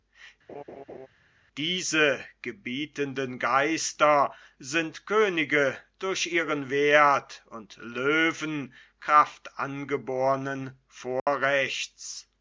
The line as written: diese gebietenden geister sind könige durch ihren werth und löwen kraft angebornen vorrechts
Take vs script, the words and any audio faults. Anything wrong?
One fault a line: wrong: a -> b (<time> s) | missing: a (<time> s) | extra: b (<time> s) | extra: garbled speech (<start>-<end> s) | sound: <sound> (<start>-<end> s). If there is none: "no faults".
sound: laugh (0.5-1.1 s)
sound: dropout (11.2-11.3 s)